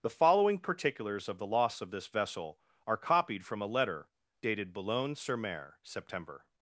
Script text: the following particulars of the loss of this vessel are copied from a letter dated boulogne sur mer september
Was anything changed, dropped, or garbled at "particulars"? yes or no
no